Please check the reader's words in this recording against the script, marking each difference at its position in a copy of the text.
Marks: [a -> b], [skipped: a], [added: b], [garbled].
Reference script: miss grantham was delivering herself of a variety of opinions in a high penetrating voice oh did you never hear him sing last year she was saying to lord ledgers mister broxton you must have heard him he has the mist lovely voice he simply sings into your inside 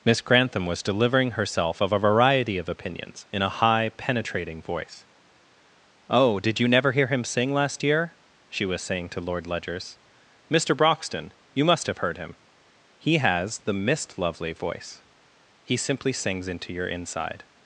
miss grantham was delivering herself of a variety of opinions in a high penetrating voice oh did you never hear him sing last year she was saying to lord ledgers mister broxton you must have heard him he has the mist lovely voice he simply sings into your inside